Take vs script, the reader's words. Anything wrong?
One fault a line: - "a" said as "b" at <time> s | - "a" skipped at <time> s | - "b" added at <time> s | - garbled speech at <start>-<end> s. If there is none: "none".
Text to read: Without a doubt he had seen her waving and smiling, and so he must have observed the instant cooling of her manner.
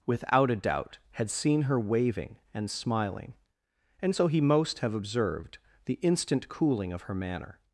- "he" skipped at 1.0 s
- "must" said as "most" at 4.4 s